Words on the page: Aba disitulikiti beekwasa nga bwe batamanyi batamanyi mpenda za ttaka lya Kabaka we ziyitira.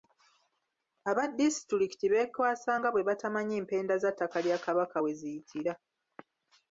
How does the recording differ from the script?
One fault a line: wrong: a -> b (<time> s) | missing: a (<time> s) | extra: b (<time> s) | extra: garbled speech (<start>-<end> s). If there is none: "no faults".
missing: batamanyi (3.5 s)